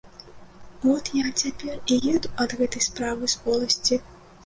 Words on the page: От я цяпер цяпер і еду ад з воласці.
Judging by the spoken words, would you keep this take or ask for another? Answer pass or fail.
fail